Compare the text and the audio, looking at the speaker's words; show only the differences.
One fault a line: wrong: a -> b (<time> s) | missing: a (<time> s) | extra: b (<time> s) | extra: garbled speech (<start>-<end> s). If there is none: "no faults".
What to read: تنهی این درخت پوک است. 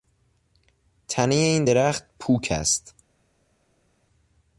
no faults